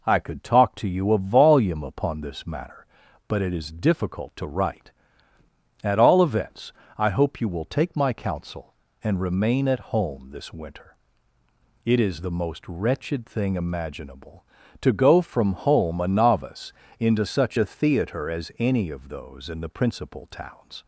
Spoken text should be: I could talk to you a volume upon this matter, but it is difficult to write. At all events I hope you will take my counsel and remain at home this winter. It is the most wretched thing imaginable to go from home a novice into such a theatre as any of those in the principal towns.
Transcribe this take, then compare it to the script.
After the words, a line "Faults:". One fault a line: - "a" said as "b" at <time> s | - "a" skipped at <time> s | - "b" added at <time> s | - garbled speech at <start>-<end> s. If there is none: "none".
I could talk to you a volume upon this matter, but it is difficult to write. At all events I hope you will take my counsel and remain at home this winter. It is the most wretched thing imaginable to go from home a novice into such a theatre as any of those in the principal towns.
Faults:
none